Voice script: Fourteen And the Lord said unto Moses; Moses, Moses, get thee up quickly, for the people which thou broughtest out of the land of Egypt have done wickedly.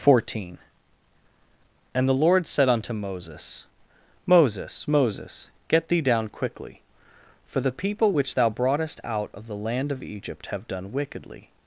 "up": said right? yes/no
no